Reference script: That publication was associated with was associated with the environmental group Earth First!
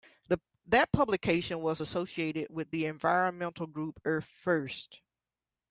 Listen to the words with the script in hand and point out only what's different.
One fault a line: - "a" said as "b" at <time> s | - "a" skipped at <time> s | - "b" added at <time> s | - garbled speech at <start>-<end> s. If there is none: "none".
- "was associated with" skipped at 2.7 s